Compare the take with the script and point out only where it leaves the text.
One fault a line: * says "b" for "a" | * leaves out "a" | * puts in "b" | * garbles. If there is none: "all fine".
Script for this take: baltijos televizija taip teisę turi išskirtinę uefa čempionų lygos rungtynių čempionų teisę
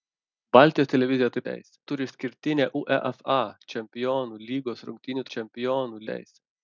all fine